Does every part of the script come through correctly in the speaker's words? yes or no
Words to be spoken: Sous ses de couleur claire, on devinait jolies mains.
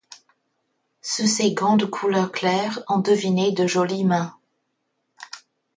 no